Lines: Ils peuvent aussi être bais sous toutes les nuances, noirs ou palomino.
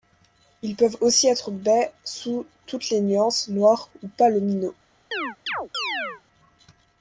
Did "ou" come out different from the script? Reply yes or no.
no